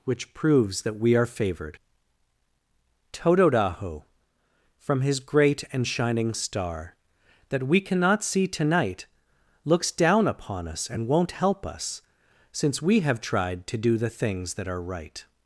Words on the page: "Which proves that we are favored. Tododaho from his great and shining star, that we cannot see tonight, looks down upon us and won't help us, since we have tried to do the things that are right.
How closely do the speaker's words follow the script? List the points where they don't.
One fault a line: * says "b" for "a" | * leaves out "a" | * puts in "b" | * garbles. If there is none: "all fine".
all fine